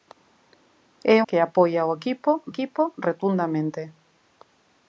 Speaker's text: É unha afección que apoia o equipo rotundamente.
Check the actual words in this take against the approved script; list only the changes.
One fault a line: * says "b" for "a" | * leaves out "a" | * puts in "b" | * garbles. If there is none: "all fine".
* leaves out "unha afección"
* puts in "equipo"